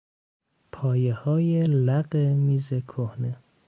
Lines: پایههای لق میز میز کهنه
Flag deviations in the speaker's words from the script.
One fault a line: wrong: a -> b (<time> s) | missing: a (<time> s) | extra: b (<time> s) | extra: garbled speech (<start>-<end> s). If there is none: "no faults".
missing: میز (2.7 s)